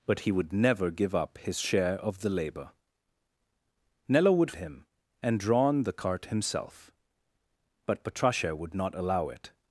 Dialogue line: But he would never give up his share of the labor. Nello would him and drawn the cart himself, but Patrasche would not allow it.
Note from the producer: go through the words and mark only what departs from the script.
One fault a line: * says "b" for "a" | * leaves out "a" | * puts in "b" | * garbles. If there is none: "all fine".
all fine